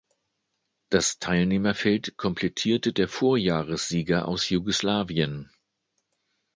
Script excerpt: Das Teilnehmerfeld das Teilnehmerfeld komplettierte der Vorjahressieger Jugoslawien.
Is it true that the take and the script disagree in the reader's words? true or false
true